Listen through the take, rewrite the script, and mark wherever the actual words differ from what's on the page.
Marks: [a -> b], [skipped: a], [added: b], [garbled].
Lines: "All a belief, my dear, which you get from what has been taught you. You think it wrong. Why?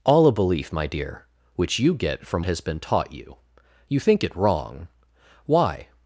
"All a belief, my dear, which you get from [skipped: what] has been taught you. You think it wrong. Why?